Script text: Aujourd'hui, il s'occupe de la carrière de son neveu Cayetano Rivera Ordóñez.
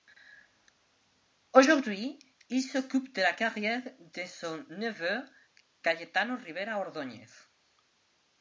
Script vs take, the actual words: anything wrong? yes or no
no